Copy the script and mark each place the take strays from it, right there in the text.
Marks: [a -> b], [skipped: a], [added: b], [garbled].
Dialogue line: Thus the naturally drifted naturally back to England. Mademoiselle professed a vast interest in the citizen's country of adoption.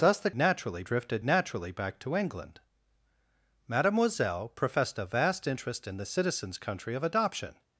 Thus the naturally drifted naturally back to England. Mademoiselle professed a vast interest in the citizen's country of adoption.